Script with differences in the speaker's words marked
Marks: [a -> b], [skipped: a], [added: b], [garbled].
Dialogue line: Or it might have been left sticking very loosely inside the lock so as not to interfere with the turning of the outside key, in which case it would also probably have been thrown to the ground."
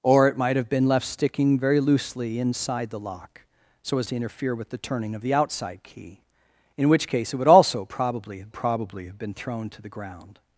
Or it might have been left sticking very loosely inside the lock so as [skipped: not] to interfere with the turning of the outside key, in which case it would also probably have [added: probably have] been thrown to the ground."